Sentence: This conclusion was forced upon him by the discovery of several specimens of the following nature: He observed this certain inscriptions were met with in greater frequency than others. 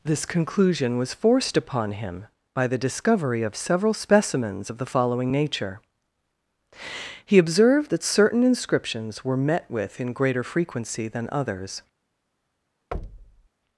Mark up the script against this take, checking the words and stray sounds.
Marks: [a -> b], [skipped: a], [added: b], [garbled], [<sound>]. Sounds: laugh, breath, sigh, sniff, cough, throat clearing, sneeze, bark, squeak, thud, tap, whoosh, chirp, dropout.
This conclusion was forced upon him by the discovery of several specimens of the following nature: He observed [this -> that] certain inscriptions were met with in greater frequency than others. [thud]